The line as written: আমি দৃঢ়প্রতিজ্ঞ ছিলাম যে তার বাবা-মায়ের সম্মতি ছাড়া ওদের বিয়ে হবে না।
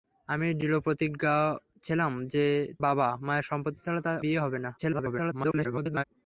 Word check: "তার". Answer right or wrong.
wrong